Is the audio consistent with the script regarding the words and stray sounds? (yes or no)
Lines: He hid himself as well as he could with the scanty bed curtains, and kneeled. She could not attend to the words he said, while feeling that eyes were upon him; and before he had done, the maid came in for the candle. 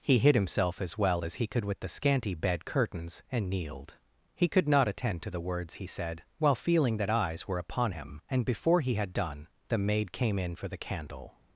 no